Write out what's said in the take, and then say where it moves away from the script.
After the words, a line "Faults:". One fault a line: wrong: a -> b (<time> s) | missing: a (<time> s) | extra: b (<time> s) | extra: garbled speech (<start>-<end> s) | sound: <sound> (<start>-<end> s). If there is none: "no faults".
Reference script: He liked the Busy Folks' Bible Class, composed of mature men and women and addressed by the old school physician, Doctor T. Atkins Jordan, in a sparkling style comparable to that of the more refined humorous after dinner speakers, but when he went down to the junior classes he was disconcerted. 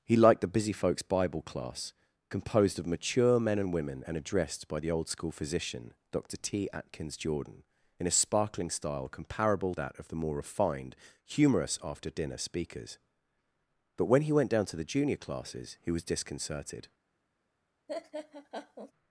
He liked the Busy Folks' Bible Class, composed of mature men and women and addressed by the old school physician, Doctor T. Atkins Jordan, in a sparkling style comparable that of the more refined humorous after dinner speakers, but when he went down to the junior classes he was disconcerted.
Faults:
missing: to (9.7 s)
sound: laugh (17.9-18.9 s)